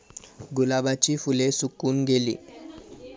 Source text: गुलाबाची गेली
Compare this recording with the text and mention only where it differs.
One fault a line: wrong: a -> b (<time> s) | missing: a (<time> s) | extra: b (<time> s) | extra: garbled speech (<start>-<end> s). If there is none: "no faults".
extra: फुले सुकून (1.2 s)